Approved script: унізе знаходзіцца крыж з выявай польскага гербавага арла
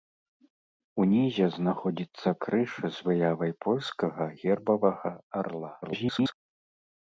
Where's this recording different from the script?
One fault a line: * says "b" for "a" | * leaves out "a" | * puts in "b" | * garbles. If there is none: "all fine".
* garbles